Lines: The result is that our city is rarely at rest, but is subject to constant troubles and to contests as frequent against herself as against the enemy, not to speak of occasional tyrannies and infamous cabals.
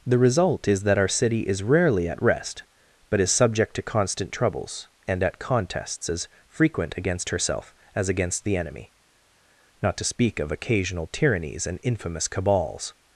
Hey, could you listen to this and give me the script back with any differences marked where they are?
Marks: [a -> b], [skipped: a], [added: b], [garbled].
The result is that our city is rarely at rest, but is subject to constant troubles and [to -> at] contests as frequent against herself as against the enemy, not to speak of occasional tyrannies and infamous cabals.